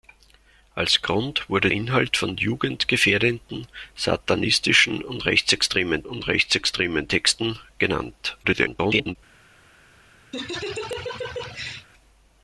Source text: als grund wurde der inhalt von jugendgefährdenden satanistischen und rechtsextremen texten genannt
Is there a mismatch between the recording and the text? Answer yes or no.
yes